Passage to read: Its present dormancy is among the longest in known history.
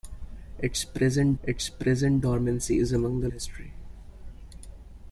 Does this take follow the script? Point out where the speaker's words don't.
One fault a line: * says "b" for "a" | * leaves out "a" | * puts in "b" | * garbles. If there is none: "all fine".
* puts in "its present"
* leaves out "longest in known"